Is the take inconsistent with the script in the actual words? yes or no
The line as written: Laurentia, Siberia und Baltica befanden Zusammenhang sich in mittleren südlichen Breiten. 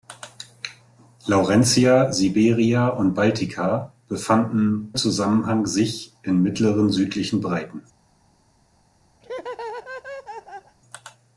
no